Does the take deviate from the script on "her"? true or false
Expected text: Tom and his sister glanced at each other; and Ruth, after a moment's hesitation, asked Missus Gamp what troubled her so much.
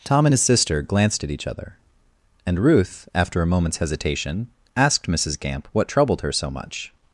false